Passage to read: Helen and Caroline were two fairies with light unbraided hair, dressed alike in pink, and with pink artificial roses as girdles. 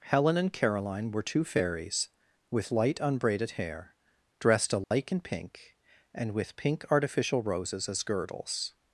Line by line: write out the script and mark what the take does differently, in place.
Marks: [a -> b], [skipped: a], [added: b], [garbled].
Helen and Caroline were two fairies with light unbraided hair, dressed alike in pink, and with pink artificial roses as girdles.